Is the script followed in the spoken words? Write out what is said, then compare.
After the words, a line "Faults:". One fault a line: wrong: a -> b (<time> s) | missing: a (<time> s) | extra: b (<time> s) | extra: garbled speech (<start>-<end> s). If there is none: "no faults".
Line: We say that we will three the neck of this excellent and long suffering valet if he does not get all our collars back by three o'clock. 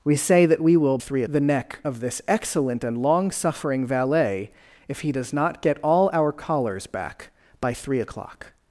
We say that we will three the neck of this excellent and long suffering valet if he does not get all our collars back by three o'clock.
Faults:
no faults